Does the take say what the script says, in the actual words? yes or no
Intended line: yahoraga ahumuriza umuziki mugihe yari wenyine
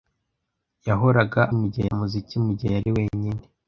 no